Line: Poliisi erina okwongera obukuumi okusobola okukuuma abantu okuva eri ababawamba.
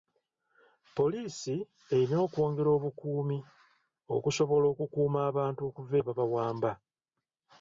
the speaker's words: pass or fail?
fail